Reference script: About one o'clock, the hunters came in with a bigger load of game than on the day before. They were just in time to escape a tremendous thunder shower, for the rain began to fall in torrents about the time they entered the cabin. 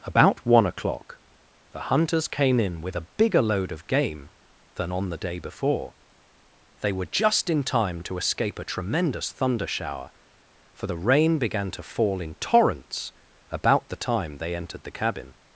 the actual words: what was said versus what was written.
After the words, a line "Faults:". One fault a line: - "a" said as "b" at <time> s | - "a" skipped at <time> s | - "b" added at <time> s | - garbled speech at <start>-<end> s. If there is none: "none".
About one o'clock, the hunters came in with a bigger load of game than on the day before. They were just in time to escape a tremendous thunder shower, for the rain began to fall in torrents about the time they entered the cabin.
Faults:
none